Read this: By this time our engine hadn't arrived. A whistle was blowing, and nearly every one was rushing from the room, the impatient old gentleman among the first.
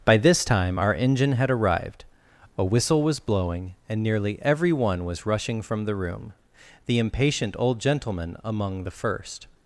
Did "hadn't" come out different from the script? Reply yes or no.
yes